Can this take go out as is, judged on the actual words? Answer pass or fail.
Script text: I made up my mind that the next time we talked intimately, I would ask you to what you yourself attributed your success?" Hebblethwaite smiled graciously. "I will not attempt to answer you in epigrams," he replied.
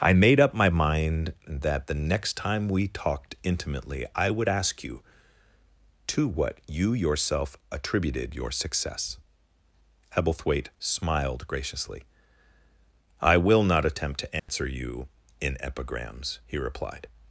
pass